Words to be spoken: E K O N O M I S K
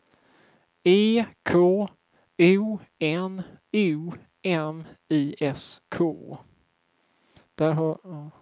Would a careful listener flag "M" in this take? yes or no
no